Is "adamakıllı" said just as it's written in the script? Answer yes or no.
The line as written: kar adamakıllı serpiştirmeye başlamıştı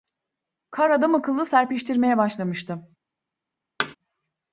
yes